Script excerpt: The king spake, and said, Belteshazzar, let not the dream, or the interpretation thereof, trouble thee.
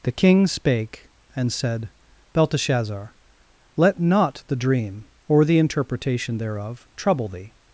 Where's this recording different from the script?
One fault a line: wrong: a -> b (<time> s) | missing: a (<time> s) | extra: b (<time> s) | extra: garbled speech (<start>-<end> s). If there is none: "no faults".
no faults